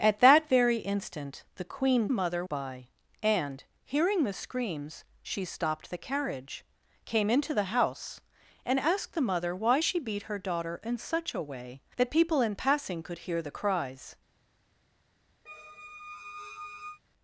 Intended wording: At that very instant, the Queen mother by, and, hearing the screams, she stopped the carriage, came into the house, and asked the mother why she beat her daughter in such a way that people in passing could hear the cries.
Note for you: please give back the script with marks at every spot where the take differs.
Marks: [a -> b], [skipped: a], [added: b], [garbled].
At that very instant, the Queen mother by, and, hearing the screams, she stopped the carriage, came into the house, and asked the mother why she beat her daughter in such a way that people in passing could hear the cries.